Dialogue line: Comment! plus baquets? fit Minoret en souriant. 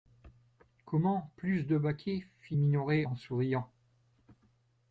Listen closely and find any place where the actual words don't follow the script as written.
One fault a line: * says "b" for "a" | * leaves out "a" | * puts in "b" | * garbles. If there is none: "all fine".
* puts in "de"